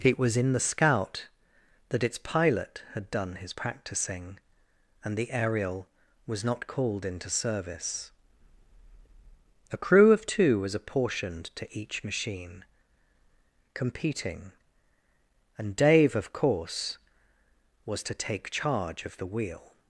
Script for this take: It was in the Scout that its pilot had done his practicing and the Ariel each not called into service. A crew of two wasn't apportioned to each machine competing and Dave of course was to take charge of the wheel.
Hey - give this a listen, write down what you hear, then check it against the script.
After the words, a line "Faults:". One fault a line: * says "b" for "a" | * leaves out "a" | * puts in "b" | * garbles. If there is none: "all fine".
It was in the Scout that its pilot had done his practicing and the Ariel was not called into service. A crew of two was apportioned to each machine competing and Dave of course was to take charge of the wheel.
Faults:
* says "was" for "each"
* says "was" for "wasn't"